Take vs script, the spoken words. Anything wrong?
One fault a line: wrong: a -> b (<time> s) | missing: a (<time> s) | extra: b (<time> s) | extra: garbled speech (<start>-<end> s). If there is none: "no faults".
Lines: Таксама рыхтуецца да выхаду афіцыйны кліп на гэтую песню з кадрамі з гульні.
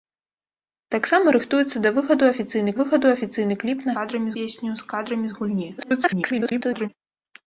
extra: выхаду афіцыйны (2.8 s)
wrong: гэтую -> кадрамі (4.0 s)
extra: garbled speech (5.8-6.9 s)